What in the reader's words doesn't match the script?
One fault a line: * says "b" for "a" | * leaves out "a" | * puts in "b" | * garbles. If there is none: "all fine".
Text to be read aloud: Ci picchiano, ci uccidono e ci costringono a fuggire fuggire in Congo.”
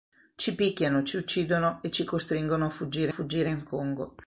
all fine